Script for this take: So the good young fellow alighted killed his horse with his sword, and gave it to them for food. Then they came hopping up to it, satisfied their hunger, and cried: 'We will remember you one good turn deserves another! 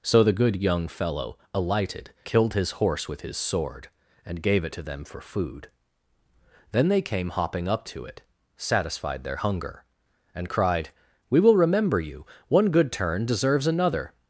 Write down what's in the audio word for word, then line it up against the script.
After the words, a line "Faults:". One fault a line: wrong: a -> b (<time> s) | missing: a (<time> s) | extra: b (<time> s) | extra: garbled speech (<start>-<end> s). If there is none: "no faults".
So the good young fellow alighted killed his horse with his sword, and gave it to them for food. Then they came hopping up to it, satisfied their hunger, and cried: 'We will remember you one good turn deserves another!
Faults:
no faults